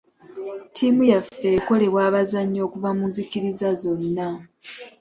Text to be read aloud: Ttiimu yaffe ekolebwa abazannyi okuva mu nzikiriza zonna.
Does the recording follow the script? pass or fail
pass